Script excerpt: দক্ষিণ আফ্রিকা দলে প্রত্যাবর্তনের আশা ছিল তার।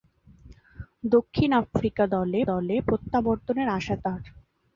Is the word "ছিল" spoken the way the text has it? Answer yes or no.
no